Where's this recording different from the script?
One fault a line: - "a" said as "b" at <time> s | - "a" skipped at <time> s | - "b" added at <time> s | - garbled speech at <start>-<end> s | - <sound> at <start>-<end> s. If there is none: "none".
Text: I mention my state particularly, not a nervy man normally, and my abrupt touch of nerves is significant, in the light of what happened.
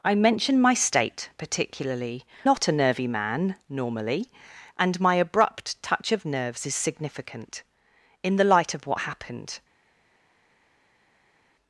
none